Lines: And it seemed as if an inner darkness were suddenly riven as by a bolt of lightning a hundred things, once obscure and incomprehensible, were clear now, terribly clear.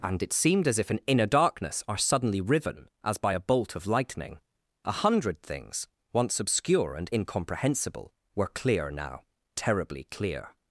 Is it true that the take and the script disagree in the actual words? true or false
true